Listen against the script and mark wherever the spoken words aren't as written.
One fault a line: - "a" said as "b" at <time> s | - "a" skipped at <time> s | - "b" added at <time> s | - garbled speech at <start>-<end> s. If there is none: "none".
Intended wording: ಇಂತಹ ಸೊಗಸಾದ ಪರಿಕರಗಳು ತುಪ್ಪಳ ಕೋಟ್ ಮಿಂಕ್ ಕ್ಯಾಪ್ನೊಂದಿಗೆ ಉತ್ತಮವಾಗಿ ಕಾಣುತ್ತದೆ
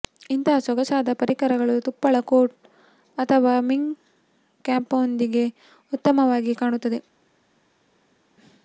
- "ಅಥವಾ" added at 3.2 s